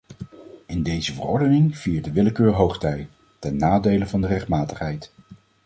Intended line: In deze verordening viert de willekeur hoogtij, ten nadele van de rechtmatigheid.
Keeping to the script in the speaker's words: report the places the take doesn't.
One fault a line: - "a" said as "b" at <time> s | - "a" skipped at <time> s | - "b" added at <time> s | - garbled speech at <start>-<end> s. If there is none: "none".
none